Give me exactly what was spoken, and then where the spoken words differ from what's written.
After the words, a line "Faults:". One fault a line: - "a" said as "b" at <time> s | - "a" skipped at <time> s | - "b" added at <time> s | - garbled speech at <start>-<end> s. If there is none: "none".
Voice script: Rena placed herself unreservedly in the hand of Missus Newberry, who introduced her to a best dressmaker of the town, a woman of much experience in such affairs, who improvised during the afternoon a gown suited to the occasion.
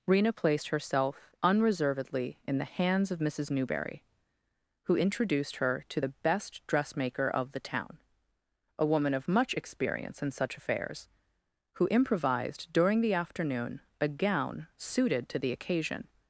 Rena placed herself unreservedly in the hands of Missus Newberry, who introduced her to the best dressmaker of the town, a woman of much experience in such affairs, who improvised during the afternoon a gown suited to the occasion.
Faults:
- "hand" said as "hands" at 2.6 s
- "a" said as "the" at 6.0 s